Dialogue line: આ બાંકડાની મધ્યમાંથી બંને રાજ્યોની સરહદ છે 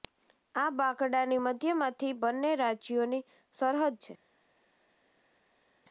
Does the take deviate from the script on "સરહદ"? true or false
false